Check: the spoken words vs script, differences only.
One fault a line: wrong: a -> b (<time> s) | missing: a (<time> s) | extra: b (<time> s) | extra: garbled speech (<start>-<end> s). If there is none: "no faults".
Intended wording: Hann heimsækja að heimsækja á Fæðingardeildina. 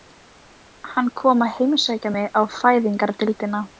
wrong: heimsækja -> kom (1.2 s)
extra: mig (2.1 s)